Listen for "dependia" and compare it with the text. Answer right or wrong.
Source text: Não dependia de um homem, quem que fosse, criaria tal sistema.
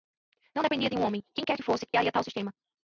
right